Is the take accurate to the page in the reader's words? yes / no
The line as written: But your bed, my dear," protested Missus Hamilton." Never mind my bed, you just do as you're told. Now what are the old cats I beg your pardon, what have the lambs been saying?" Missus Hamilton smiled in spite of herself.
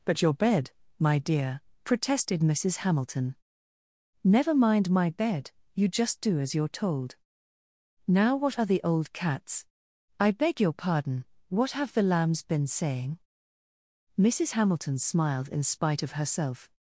yes